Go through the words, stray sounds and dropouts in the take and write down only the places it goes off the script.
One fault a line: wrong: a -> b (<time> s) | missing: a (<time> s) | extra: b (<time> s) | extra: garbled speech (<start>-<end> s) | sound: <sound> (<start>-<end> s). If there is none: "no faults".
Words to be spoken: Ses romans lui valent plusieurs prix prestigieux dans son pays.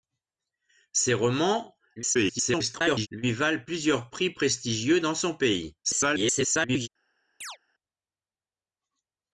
extra: garbled speech (2.0-3.1 s)
extra: garbled speech (5.8-6.9 s)
sound: chirp (7.4-7.6 s)